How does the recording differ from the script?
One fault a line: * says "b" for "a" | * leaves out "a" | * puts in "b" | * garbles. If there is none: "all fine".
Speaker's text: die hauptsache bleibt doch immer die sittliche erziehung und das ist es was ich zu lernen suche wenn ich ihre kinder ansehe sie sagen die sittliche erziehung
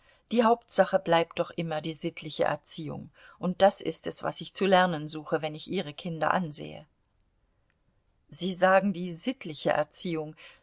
all fine